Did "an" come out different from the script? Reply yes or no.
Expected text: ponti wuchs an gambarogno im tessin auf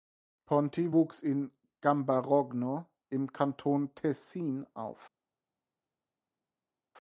yes